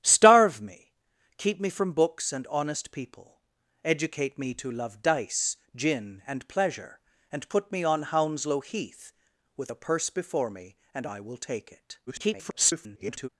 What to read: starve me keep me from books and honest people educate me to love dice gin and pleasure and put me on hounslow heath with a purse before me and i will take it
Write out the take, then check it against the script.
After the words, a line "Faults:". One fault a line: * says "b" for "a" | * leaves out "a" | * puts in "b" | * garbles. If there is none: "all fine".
starve me keep me from books and honest people educate me to love dice gin and pleasure and put me on hounslow heath with a purse before me and i will take it [garbled]
Faults:
* garbles